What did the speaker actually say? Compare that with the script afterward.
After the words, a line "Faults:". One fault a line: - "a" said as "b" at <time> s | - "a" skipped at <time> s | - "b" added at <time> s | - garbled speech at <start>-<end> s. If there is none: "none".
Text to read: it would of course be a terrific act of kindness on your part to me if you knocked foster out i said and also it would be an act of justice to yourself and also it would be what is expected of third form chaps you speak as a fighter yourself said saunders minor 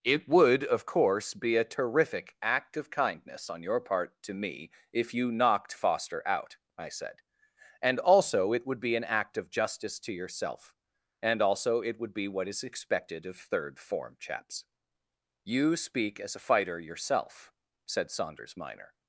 it would of course be a terrific act of kindness on your part to me if you knocked foster out i said and also it would be an act of justice to yourself and also it would be what is expected of third form chaps you speak as a fighter yourself said saunders minor
Faults:
none